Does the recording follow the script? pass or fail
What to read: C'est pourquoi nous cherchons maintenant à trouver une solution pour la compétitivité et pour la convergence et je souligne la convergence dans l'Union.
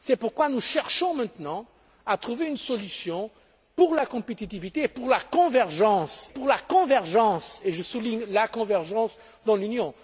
fail